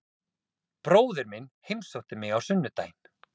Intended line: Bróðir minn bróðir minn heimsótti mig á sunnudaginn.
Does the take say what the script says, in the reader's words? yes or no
no